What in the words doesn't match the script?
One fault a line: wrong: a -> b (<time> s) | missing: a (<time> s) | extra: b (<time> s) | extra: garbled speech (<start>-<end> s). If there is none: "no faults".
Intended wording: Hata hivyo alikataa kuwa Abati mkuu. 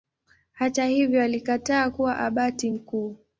no faults